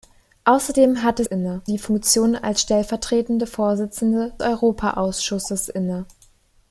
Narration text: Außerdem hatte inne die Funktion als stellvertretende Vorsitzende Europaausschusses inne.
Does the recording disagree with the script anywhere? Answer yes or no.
no